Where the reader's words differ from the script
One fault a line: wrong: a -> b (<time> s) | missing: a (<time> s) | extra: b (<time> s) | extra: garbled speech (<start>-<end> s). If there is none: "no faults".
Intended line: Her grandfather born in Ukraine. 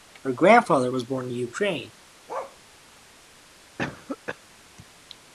extra: was (0.9 s)